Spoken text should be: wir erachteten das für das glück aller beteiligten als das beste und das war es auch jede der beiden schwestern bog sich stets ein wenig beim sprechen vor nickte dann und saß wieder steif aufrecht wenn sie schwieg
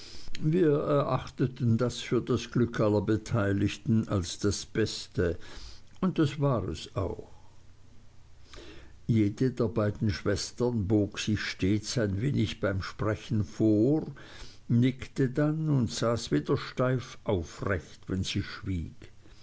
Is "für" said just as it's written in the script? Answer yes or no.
yes